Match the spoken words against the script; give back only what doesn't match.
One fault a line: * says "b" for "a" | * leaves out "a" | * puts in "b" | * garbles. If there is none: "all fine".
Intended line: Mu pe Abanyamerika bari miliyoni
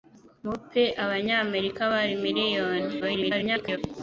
* garbles